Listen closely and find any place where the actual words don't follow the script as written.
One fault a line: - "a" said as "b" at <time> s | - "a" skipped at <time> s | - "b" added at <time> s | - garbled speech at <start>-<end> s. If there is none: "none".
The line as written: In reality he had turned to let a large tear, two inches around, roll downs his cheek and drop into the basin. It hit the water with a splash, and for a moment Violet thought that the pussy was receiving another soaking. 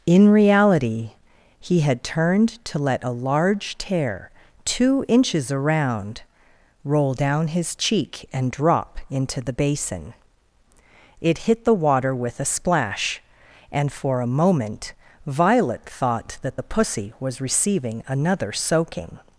- "downs" said as "down" at 7.1 s